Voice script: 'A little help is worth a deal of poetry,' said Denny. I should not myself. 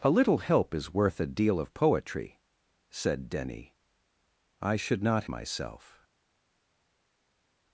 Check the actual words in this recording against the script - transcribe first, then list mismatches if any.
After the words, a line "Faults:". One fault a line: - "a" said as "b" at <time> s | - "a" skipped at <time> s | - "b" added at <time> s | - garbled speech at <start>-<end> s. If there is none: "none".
'A little help is worth a deal of poetry,' said Denny. I should not myself.
Faults:
none